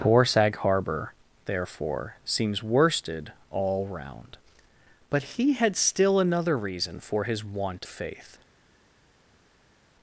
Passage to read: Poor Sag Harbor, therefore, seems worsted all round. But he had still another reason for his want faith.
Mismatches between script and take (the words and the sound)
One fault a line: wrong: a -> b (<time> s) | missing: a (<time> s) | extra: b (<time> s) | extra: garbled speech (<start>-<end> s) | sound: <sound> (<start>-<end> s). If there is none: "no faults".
no faults